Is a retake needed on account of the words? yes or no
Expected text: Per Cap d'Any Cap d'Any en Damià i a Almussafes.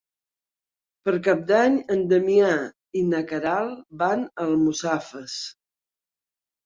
yes